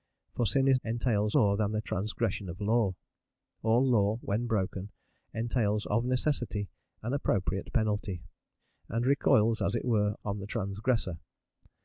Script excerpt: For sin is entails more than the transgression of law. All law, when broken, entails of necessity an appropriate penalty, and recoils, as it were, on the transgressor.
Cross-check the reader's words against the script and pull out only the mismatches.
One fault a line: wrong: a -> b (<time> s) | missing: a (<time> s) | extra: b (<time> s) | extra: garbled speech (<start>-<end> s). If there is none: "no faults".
no faults